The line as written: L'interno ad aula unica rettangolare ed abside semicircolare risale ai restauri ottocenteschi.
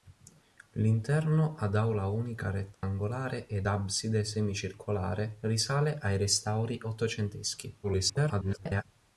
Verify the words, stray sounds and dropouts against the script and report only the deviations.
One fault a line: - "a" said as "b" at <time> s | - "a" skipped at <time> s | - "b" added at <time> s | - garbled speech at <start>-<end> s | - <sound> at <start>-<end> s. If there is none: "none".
- dropout at 2.7-2.8 s
- garbled speech at 7.8-8.8 s